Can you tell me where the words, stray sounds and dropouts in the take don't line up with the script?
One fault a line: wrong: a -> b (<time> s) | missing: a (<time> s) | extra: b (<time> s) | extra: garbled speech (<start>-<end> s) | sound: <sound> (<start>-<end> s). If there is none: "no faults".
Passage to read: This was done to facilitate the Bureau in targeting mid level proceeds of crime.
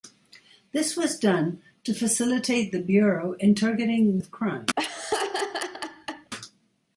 missing: mid level proceeds (4.2 s)
sound: laugh (4.8-6.3 s)